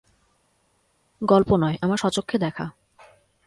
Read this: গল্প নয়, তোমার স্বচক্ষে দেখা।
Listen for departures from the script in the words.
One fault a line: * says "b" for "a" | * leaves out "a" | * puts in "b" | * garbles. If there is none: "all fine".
* says "আমার" for "তোমার"